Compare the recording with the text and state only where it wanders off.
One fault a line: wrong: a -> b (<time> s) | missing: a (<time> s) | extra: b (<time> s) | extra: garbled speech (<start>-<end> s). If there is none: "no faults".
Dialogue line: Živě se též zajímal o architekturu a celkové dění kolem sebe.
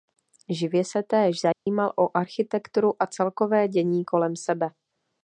no faults